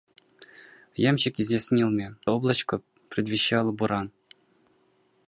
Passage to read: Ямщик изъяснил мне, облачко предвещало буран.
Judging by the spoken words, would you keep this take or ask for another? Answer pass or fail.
pass